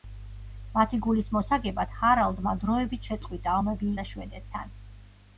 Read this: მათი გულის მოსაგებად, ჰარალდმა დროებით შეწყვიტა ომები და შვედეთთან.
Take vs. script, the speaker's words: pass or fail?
pass